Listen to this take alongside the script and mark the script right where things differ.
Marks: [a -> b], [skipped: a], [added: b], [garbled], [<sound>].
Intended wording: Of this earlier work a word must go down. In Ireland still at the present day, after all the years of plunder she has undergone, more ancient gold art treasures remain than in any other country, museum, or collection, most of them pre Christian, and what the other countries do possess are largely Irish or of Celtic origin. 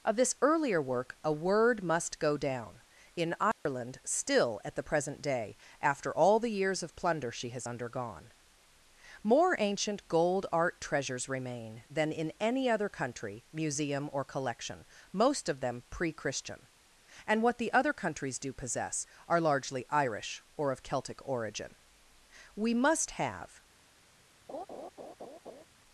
Of this earlier work a word must go down. In Ireland [dropout] still at the present day, after all the years of plunder she has undergone, more ancient gold art treasures remain than in any other country, museum, or collection, most of them pre Christian, and what the other countries do possess are largely Irish or of Celtic origin. [added: We must have] [laugh]